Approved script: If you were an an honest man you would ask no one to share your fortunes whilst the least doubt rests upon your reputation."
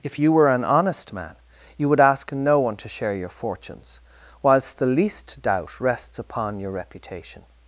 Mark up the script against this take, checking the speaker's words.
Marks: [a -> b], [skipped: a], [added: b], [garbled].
If you were an [skipped: an] honest man you would ask no one to share your fortunes whilst the least doubt rests upon your reputation."